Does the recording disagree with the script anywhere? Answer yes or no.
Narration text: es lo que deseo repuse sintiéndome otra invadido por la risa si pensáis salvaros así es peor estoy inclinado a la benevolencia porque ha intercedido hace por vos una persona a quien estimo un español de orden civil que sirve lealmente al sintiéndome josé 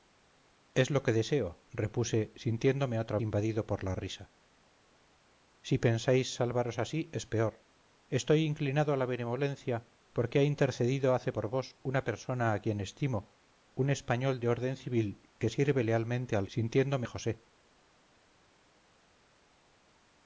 no